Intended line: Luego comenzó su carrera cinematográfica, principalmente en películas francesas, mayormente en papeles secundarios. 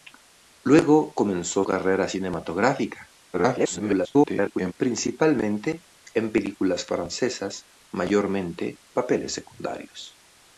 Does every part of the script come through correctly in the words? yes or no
no